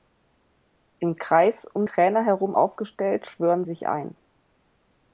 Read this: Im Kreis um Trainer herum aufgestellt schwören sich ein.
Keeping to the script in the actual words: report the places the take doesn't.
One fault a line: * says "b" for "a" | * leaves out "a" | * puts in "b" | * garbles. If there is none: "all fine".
all fine